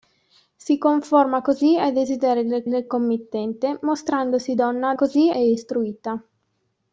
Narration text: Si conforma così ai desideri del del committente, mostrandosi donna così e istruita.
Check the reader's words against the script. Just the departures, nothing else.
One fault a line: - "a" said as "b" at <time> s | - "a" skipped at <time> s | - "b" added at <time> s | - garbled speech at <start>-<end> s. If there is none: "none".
none